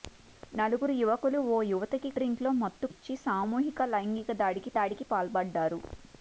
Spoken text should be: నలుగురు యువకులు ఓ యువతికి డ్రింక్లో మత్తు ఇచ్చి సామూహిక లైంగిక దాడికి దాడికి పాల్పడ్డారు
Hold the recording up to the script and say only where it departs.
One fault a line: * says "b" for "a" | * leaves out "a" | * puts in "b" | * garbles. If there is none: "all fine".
all fine